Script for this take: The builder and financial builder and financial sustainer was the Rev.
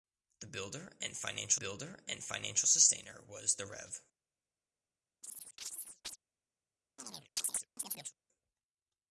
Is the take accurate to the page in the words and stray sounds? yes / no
no